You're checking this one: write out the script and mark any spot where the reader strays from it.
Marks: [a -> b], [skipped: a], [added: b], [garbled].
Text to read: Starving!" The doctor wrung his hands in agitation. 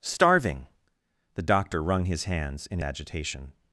Starving!" The doctor wrung his hands in agitation.